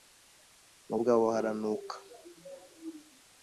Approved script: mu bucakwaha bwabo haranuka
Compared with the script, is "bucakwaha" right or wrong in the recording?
wrong